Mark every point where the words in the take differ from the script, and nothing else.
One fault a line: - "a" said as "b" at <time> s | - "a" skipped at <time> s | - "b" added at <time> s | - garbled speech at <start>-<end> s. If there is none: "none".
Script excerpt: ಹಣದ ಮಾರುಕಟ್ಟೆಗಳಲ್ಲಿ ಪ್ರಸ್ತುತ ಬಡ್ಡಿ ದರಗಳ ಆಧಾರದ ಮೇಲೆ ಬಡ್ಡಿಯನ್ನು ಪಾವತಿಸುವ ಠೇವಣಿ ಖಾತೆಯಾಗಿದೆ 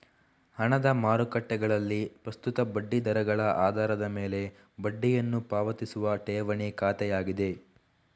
none